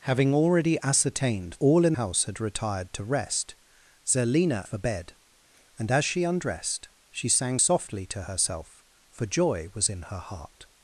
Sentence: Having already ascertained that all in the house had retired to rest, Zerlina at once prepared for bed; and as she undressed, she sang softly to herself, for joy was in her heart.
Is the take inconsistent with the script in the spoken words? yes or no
yes